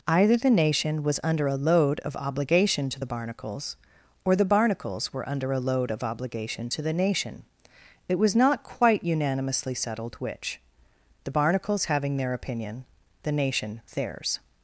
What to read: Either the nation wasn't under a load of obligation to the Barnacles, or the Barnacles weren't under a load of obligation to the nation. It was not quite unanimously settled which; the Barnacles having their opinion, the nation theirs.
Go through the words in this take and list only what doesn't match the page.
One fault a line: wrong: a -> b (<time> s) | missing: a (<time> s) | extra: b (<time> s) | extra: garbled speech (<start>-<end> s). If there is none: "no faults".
wrong: wasn't -> was (1.0 s)
wrong: weren't -> were (5.1 s)